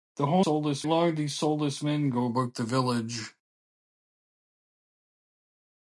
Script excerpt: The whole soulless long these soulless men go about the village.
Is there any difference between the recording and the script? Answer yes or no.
no